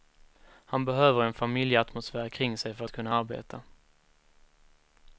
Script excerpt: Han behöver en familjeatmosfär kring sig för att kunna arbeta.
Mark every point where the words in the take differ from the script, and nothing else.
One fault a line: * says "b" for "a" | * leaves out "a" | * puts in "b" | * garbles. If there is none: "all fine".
all fine